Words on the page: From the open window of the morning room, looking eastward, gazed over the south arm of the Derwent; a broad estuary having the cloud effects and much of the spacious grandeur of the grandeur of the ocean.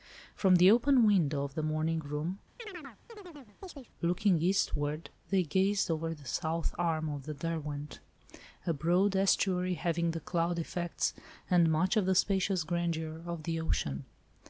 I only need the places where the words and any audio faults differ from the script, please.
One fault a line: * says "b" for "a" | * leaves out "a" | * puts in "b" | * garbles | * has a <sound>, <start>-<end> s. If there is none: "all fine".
* has a chirp, 2.6-3.9 s
* puts in "they"
* leaves out "grandeur of the"